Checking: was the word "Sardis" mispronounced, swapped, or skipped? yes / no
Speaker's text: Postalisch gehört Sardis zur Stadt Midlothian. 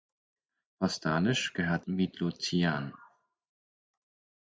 yes